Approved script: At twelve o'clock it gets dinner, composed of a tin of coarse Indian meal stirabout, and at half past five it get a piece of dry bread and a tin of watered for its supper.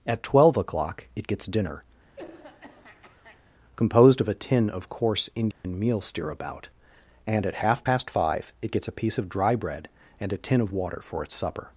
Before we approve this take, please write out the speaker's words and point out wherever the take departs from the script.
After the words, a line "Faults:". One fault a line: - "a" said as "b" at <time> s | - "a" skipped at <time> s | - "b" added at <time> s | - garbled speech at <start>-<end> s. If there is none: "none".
At twelve o'clock it gets dinner, composed of a tin of coarse Indian meal stirabout, and at half past five it gets a piece of dry bread and a tin of water for its supper.
Faults:
- "get" said as "gets" at 8.7 s
- "watered" said as "water" at 10.7 s